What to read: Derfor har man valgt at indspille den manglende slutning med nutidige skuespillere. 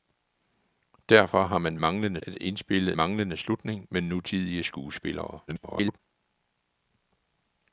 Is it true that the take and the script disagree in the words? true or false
true